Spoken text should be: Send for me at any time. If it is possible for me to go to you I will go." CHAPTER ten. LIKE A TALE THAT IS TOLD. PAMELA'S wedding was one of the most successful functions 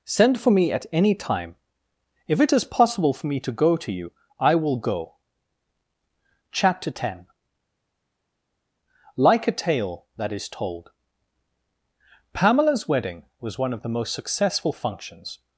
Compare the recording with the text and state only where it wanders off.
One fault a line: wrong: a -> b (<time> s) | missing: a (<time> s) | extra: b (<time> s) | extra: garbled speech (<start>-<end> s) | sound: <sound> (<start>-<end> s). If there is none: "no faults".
no faults